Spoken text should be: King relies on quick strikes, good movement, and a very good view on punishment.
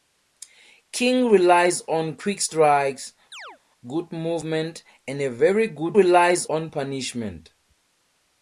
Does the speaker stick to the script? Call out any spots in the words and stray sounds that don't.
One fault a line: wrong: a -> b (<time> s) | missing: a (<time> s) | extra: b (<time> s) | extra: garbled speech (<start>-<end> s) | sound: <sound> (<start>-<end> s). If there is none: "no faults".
sound: chirp (3.3-3.6 s)
wrong: view -> relies (5.9 s)